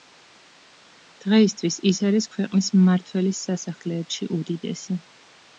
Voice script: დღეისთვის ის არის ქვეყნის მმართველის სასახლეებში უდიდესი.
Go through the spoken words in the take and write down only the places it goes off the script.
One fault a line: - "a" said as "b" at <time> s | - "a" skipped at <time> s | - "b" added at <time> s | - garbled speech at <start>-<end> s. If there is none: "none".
none